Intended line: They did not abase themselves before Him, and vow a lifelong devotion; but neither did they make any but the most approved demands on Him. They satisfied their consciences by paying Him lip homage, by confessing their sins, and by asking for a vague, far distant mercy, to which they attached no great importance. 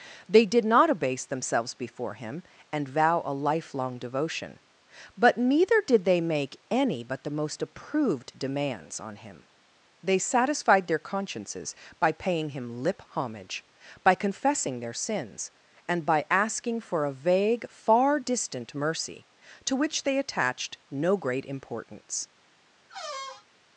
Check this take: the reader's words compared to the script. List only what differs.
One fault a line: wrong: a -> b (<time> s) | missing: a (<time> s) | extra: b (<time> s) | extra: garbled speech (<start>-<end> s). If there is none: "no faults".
no faults